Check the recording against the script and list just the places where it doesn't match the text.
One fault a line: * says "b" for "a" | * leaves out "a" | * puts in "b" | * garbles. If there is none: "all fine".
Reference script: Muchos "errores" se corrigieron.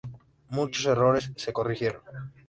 all fine